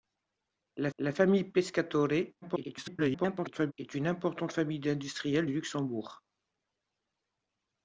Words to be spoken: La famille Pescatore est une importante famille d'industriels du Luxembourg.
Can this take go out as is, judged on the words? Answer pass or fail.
fail